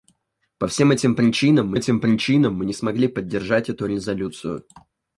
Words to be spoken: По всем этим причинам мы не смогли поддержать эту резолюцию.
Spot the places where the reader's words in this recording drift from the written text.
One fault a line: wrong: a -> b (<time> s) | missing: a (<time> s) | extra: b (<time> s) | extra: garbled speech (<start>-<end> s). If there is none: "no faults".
extra: этим причинам мы (1.7 s)